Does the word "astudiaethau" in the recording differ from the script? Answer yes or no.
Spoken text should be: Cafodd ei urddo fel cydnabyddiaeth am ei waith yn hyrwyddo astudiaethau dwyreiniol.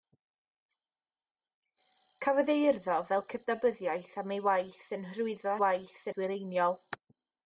yes